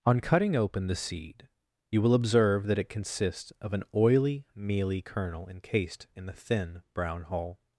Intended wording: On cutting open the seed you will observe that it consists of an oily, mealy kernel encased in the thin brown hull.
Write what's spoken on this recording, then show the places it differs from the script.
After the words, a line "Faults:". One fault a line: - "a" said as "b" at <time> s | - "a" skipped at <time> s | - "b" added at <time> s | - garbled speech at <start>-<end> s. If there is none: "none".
On cutting open the seed you will observe that it consists of an oily, mealy kernel encased in the thin brown hull.
Faults:
none